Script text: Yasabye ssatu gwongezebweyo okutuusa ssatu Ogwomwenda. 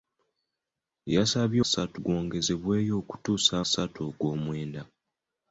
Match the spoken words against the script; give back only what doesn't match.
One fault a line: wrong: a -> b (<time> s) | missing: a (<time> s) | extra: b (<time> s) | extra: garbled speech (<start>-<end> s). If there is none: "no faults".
no faults